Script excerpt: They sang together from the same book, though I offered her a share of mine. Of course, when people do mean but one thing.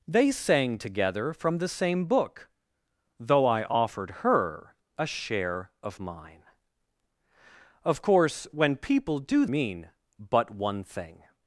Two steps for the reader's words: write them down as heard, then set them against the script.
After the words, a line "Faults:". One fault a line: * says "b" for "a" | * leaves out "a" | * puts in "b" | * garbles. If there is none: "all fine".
They sang together from the same book, though I offered her a share of mine. Of course, when people do mean but one thing.
Faults:
all fine